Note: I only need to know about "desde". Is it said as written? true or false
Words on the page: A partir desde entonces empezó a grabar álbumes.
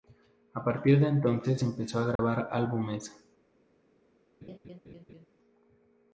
false